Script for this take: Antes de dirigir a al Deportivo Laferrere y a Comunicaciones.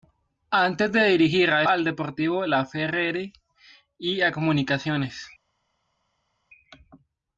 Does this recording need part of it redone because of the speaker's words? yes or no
no